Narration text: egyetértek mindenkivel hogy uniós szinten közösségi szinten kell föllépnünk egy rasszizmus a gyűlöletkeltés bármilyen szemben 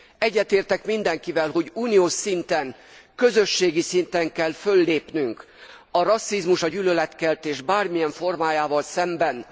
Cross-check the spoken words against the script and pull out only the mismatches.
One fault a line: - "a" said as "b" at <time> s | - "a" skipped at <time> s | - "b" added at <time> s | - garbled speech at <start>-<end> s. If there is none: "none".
- "egy" said as "a" at 5.9 s
- "formájával" added at 8.1 s